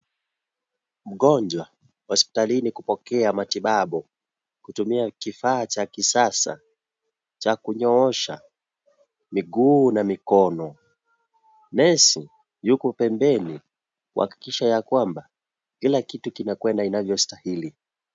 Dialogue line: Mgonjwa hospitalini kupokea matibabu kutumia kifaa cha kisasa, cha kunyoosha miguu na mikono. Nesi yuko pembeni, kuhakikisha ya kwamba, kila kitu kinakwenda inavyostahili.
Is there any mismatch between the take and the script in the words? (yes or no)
no